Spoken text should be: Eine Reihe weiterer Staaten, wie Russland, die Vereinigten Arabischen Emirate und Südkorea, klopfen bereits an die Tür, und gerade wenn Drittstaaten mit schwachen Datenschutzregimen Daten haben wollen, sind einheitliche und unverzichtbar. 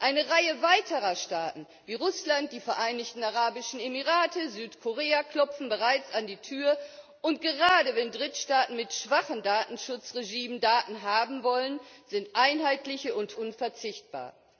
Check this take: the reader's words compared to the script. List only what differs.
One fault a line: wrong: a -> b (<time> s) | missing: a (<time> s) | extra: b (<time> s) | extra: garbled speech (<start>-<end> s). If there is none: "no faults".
no faults